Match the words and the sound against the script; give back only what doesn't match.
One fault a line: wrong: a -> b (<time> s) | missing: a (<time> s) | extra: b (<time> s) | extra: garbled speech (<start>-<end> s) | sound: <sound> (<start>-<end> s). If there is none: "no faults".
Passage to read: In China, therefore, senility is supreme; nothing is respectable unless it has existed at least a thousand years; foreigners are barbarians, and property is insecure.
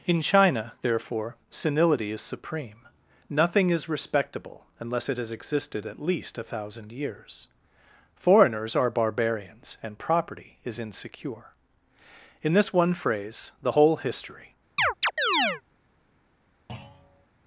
extra: In this one phrase the whole history (12.4 s)
sound: chirp (14.8-15.6 s)
sound: thud (16.7-17.3 s)